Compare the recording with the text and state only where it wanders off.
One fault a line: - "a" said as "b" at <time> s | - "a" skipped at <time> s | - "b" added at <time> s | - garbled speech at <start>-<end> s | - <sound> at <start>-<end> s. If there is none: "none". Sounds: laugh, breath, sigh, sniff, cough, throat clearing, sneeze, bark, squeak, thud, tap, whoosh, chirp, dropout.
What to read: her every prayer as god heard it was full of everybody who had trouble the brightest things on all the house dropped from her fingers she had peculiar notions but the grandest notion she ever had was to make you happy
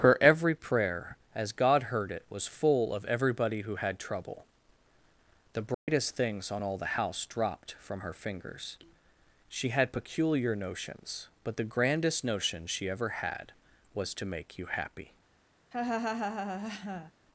- dropout at 5.7-5.9 s
- laugh at 15.7-17.1 s